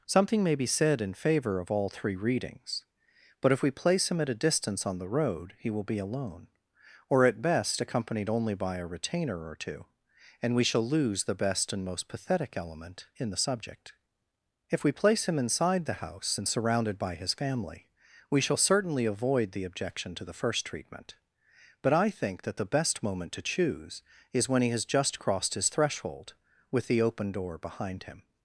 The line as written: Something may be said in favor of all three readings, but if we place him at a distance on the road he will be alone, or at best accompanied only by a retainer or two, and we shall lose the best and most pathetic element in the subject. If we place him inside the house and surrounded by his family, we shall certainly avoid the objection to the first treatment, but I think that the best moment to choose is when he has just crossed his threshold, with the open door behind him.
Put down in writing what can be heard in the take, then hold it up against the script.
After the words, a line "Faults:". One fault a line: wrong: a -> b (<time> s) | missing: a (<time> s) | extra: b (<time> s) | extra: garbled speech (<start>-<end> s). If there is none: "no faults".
Something may be said in favor of all three readings, but if we place him at a distance on the road he will be alone, or at best accompanied only by a retainer or two, and we shall lose the best and most pathetic element in the subject. If we place him inside the house and surrounded by his family, we shall certainly avoid the objection to the first treatment, but I think that the best moment to choose is when he has just crossed his threshold, with the open door behind him.
Faults:
no faults